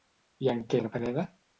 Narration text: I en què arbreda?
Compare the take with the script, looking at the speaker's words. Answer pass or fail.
pass